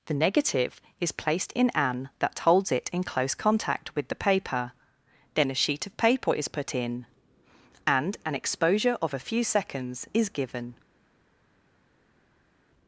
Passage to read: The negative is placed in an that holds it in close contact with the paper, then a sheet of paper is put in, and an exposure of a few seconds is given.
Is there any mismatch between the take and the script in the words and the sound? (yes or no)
no